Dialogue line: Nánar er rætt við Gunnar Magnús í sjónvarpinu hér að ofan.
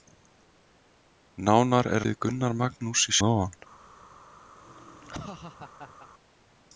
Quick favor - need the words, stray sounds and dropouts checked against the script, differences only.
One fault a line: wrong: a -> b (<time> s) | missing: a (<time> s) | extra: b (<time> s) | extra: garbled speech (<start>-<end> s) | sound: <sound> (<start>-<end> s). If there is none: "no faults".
missing: rætt (2.0 s)
missing: sjónvarpinu hér (3.1 s)
sound: laugh (4.6-6.1 s)